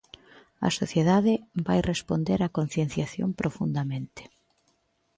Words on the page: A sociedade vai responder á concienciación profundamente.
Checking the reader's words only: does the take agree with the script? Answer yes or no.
yes